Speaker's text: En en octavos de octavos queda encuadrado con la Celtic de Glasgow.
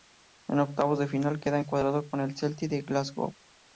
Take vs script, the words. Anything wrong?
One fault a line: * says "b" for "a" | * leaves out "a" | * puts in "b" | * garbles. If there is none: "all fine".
* leaves out "en"
* says "final" for "octavos"
* says "el" for "la"